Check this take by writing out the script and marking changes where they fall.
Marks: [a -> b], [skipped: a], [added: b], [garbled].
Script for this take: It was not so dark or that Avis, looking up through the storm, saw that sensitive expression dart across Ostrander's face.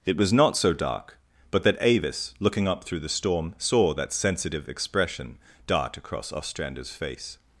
It was not so dark [or -> but] that Avis, looking up through the storm, saw that sensitive expression dart across Ostrander's face.